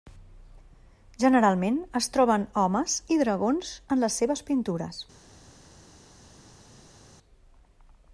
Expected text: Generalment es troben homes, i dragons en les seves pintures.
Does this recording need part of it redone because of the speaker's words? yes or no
no